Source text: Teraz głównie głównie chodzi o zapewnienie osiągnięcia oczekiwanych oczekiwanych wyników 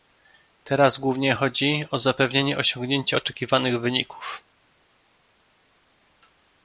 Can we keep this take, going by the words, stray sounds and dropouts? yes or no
no